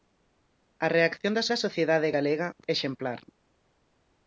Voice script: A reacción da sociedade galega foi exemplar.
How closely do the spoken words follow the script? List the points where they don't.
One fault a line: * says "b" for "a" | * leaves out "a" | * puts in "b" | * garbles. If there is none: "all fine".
* puts in "da"
* leaves out "foi"